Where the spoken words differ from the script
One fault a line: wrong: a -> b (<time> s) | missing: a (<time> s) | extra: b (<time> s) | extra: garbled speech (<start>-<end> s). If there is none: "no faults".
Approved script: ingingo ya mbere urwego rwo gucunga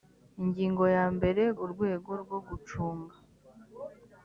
no faults